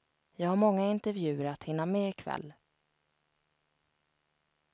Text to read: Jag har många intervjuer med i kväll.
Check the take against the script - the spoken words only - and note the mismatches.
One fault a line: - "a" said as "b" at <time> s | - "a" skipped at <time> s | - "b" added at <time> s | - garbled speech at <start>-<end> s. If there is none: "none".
- "att hinna" added at 1.4 s